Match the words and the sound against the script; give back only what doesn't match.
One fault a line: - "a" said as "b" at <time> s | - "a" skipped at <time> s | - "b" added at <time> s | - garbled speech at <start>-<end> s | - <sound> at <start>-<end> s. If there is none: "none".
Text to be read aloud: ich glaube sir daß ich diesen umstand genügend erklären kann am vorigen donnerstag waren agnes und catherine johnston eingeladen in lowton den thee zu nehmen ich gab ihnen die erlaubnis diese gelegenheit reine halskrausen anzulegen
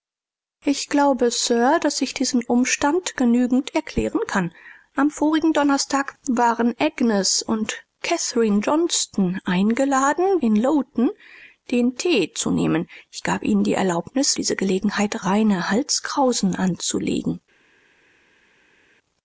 none